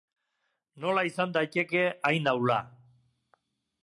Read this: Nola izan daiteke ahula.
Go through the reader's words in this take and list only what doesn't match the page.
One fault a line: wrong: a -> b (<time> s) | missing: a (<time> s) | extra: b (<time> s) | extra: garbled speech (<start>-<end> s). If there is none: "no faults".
extra: hain (2.1 s)